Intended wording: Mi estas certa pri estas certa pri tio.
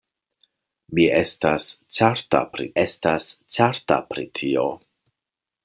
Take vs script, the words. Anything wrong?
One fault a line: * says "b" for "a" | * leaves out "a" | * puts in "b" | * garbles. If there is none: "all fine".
all fine